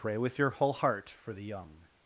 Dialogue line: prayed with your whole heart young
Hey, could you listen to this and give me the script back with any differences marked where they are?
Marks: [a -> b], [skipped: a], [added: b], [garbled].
[prayed -> pray] with your whole heart [added: for the] young